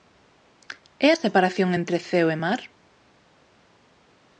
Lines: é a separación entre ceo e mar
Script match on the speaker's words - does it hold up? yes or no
yes